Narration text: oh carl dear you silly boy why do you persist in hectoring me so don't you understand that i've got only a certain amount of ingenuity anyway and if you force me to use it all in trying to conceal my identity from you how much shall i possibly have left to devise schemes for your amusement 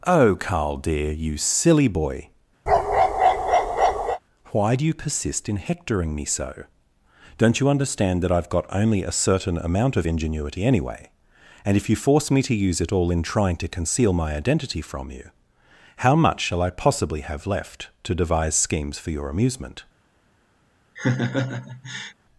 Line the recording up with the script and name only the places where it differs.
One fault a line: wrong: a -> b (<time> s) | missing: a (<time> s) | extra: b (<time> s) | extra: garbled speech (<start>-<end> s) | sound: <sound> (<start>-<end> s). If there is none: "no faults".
sound: bark (2.7-4.2 s)
sound: laugh (21.0-22.1 s)